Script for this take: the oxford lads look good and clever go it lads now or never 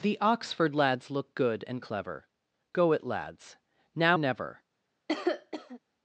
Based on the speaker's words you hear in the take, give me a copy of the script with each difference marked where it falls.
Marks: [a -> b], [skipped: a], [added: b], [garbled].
the oxford lads look good and clever go it lads now [skipped: or] never